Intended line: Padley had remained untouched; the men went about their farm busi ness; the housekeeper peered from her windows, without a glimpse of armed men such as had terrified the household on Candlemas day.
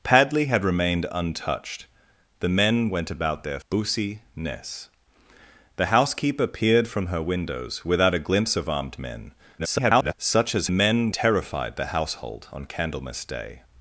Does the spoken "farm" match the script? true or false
false